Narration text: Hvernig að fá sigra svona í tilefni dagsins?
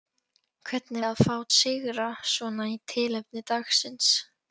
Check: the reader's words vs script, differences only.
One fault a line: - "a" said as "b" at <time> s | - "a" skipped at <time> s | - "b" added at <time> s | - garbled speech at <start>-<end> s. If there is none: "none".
none